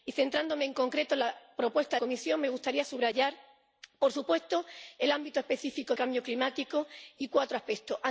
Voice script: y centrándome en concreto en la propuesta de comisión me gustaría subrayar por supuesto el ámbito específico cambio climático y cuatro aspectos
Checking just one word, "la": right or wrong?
right